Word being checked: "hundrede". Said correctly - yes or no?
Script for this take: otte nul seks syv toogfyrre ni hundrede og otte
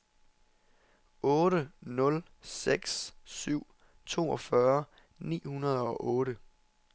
yes